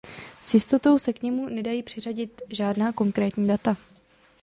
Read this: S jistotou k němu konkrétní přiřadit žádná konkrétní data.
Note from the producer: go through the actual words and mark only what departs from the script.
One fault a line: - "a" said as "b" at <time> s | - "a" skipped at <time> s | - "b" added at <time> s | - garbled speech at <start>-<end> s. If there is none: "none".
- "se" added at 1.0 s
- "konkrétní" said as "nedají" at 1.5 s